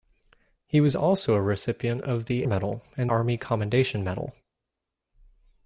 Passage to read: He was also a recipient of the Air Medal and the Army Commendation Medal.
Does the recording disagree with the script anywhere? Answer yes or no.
yes